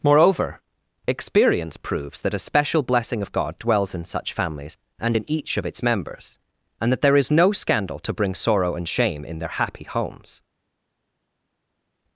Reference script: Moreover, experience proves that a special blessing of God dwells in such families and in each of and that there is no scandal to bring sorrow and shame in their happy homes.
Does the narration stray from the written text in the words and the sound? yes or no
yes